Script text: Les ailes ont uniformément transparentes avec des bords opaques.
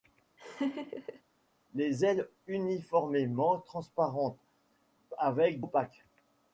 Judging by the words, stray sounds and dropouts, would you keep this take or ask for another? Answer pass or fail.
fail